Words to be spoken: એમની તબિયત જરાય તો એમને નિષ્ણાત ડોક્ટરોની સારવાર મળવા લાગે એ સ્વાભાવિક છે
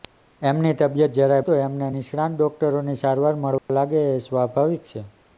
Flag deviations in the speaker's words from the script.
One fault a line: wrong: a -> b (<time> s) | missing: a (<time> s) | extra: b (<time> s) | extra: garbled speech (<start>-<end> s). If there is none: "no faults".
no faults